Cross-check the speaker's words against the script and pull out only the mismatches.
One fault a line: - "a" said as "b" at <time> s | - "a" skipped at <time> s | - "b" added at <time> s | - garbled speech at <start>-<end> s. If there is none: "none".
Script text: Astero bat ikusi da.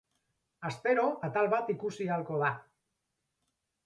- "atal" added at 1.3 s
- "ahalko" added at 2.1 s